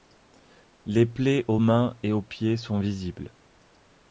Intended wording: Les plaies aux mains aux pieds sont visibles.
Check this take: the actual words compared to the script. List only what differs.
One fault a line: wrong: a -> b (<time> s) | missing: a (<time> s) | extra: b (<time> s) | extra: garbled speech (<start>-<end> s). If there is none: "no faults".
extra: et (2.0 s)